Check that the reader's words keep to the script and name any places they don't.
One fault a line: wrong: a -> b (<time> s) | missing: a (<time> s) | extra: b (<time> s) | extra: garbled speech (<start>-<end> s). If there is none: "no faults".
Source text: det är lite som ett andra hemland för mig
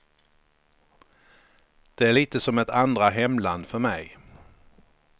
no faults